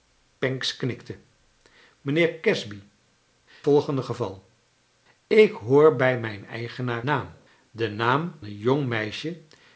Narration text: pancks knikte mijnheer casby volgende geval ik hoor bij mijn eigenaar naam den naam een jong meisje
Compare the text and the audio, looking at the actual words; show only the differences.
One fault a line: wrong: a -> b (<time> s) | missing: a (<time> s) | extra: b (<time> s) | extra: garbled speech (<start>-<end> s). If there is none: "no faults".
no faults